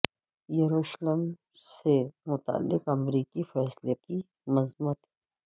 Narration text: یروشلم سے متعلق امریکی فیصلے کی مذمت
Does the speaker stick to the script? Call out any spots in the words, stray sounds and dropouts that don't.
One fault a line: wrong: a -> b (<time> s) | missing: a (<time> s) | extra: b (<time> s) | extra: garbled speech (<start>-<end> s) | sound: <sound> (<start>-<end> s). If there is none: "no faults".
no faults